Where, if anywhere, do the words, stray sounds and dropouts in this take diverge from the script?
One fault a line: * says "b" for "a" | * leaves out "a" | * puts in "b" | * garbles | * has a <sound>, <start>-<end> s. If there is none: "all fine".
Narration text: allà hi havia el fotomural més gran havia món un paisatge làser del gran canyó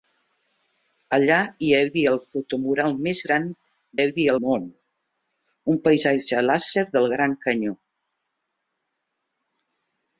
all fine